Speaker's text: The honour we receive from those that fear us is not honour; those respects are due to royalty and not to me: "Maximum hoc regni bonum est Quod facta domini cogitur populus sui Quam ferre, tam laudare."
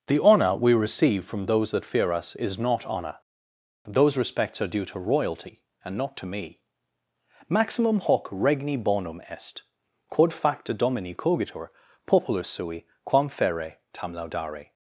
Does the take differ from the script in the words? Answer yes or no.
no